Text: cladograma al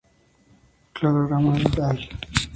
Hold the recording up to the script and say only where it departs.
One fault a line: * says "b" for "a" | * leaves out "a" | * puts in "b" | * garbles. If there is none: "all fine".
all fine